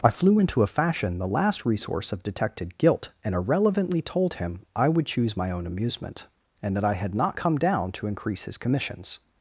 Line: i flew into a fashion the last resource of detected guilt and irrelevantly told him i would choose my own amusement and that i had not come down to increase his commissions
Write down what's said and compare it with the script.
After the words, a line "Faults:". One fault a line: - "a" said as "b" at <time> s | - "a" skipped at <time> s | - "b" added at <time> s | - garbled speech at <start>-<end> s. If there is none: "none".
i flew into a fashion the last resource of detected guilt and irrelevantly told him i would choose my own amusement and that i had not come down to increase his commissions
Faults:
none